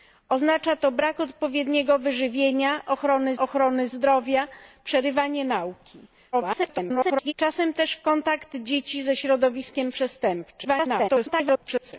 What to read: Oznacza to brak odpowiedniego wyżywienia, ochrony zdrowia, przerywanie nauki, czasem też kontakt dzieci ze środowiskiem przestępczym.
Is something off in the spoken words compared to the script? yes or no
yes